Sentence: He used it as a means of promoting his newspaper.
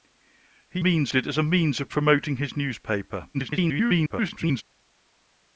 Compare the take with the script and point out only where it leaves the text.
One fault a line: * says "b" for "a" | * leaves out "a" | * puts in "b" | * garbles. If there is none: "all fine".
* says "means" for "used"
* garbles